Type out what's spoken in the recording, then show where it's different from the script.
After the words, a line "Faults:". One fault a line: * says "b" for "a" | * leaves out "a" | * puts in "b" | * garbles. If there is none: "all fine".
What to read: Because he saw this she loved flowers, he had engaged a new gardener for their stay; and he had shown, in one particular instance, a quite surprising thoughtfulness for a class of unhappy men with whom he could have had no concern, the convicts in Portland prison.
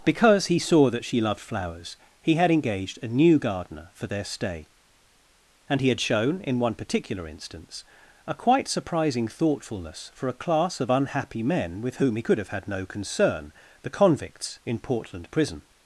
Because he saw that she loved flowers, he had engaged a new gardener for their stay; and he had shown, in one particular instance, a quite surprising thoughtfulness for a class of unhappy men with whom he could have had no concern, the convicts in Portland prison.
Faults:
* says "that" for "this"